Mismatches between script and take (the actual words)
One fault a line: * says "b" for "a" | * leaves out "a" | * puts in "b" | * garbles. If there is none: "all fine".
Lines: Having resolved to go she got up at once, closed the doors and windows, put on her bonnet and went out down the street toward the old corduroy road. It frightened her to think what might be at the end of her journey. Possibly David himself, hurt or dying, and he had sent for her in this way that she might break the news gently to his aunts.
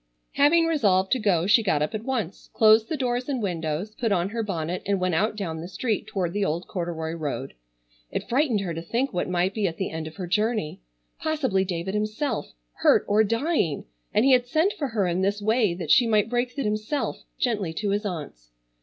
* says "himself" for "news"